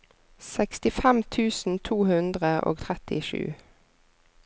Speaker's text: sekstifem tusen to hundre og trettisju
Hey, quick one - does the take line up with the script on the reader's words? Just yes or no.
yes